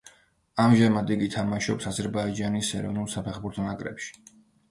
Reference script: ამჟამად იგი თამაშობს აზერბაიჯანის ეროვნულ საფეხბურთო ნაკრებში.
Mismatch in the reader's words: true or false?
false